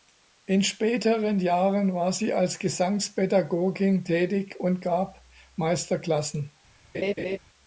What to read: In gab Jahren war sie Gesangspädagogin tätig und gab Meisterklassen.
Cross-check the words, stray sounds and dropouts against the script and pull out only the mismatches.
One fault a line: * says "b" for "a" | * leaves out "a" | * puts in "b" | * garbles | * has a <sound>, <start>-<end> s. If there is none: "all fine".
* says "späteren" for "gab"
* puts in "als"
* has a laugh, 6.9-7.4 s